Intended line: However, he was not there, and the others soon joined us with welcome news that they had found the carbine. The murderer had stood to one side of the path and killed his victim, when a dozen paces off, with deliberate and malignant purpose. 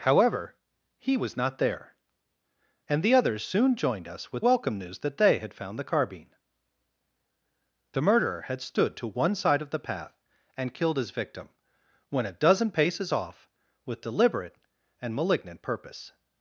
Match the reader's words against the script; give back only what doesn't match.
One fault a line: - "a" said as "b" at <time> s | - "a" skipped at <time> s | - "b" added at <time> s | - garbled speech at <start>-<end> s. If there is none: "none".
none